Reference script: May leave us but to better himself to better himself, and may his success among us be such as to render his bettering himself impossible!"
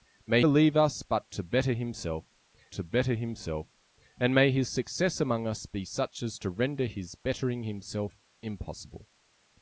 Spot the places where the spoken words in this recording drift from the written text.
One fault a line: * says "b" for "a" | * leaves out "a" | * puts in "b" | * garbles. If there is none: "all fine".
all fine